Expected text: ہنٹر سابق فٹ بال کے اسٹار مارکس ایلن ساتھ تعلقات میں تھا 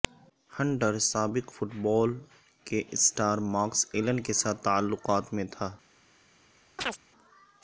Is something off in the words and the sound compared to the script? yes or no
yes